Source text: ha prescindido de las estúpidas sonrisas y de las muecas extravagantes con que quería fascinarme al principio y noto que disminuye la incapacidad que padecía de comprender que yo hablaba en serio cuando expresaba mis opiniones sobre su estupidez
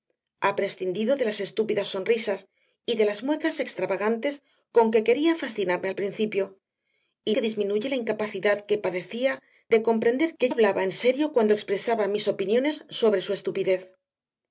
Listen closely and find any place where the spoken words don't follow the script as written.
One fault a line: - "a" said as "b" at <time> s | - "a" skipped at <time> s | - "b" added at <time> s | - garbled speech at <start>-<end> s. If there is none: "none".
- "noto" skipped at 7.3 s
- "yo" skipped at 10.5 s